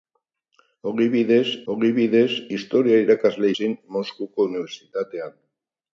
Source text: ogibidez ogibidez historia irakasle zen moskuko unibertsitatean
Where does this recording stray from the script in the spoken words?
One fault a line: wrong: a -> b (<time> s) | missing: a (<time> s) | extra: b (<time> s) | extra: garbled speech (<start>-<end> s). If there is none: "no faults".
no faults